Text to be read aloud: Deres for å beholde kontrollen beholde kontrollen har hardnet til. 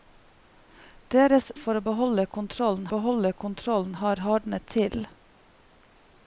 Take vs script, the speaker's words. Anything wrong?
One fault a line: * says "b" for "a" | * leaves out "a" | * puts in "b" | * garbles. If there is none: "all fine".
all fine